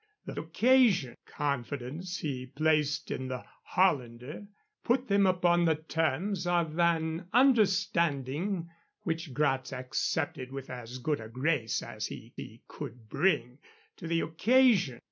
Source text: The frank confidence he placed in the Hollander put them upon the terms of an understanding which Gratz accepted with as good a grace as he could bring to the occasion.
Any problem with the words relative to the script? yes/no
yes